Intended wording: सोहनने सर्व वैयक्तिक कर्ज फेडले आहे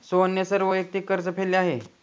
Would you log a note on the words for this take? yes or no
no